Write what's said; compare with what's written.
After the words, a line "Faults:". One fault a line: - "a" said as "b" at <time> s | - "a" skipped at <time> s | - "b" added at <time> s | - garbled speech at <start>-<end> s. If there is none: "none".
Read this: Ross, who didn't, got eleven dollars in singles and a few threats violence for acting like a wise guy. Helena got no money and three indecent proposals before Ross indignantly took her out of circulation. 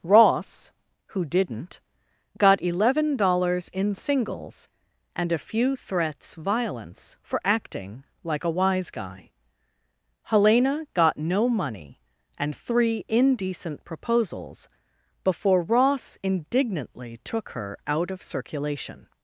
Ross, who didn't, got eleven dollars in singles and a few threats violence for acting like a wise guy. Helena got no money and three indecent proposals before Ross indignantly took her out of circulation.
Faults:
none